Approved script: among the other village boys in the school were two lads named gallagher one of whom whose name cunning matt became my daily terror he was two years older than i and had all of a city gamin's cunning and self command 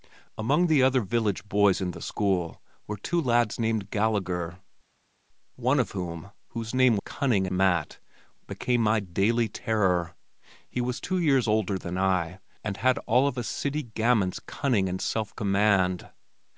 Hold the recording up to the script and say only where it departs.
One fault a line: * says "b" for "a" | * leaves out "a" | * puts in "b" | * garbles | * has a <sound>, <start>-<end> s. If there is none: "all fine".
all fine